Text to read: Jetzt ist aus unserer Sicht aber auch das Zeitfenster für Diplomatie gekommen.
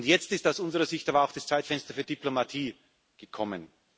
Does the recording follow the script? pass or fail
pass